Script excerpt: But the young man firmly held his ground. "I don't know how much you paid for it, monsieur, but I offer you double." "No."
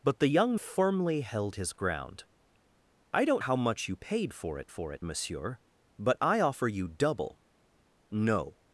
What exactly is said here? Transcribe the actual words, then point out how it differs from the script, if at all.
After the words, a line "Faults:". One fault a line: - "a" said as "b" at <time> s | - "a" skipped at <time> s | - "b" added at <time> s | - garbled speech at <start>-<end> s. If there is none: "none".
But the young firmly held his ground. "I don't how much you paid for it for it, monsieur, but I offer you double." "No."
Faults:
- "man" skipped at 0.6 s
- "know" skipped at 3.4 s
- "for it" added at 4.7 s